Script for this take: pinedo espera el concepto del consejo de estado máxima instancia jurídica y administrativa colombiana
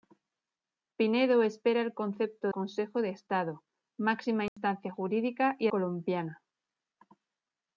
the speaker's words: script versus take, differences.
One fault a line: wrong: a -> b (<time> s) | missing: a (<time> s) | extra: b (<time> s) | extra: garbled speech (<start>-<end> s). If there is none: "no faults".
missing: del (2.5 s)
missing: administrativa (5.7 s)